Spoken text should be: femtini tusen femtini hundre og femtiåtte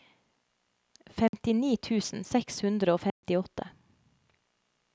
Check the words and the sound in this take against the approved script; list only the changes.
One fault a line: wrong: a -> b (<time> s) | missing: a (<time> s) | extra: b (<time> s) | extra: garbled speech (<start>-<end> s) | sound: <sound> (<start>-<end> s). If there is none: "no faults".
sound: dropout (1.3-1.3 s)
wrong: femtini -> seks (2.3 s)
sound: dropout (3.1-3.2 s)